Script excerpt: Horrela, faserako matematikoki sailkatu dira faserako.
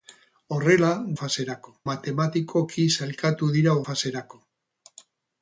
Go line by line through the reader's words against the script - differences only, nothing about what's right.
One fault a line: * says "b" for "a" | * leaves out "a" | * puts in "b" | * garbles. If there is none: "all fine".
all fine